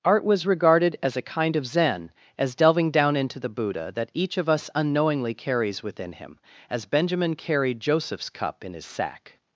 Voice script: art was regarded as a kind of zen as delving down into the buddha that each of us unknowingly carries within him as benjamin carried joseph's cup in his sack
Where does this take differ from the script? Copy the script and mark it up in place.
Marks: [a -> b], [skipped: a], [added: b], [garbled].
art was regarded as a kind of zen as delving down into the buddha that each of us unknowingly carries within him as benjamin carried joseph's cup in his sack